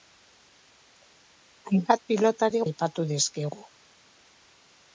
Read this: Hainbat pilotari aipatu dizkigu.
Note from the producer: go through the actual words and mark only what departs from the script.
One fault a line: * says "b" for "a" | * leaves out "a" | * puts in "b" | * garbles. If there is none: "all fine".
all fine